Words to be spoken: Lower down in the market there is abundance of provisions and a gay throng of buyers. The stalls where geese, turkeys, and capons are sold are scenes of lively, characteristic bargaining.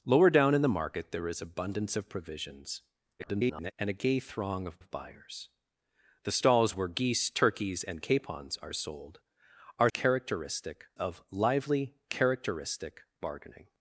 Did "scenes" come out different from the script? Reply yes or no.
yes